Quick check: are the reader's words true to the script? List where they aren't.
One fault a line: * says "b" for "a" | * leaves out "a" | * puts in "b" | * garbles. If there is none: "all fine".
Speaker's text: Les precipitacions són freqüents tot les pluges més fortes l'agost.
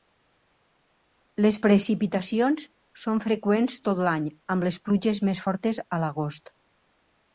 * puts in "l'any amb"
* puts in "a"